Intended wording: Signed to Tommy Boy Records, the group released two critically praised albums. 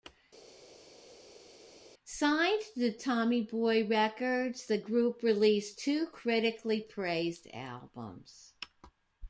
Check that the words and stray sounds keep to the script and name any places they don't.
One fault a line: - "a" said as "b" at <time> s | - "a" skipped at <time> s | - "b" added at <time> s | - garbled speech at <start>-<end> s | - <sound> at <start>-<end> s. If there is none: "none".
none